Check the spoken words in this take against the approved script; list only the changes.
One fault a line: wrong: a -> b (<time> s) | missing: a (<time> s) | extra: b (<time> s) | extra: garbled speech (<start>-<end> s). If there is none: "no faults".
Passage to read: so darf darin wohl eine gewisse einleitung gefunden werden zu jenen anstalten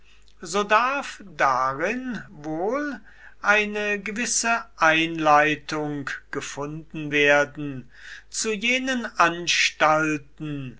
no faults